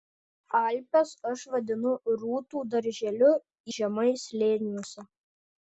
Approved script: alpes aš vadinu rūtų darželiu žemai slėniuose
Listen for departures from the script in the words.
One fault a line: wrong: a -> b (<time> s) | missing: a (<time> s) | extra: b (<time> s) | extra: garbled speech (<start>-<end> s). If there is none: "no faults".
no faults